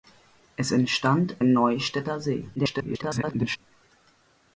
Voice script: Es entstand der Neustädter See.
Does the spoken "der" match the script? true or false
false